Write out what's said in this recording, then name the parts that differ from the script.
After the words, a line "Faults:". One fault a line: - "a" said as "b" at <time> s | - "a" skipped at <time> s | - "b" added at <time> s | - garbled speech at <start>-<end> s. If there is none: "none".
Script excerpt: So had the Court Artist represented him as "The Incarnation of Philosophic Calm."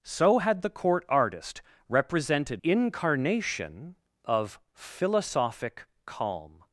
So had the Court Artist represented Incarnation of Philosophic Calm."
Faults:
- "him as The" skipped at 2.6 s